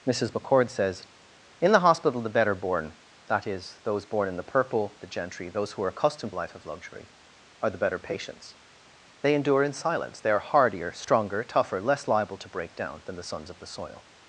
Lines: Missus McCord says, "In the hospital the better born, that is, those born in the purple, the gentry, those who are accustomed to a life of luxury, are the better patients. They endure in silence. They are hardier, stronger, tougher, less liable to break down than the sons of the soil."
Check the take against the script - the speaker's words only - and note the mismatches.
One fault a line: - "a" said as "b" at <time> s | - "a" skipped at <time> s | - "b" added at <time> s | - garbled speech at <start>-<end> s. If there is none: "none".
- "to" skipped at 6.3 s